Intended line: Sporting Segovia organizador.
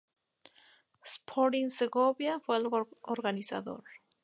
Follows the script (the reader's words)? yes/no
no